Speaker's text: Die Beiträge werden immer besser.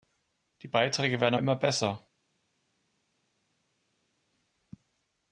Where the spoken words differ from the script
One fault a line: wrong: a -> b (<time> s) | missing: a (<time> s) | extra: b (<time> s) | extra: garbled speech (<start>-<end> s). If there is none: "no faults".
no faults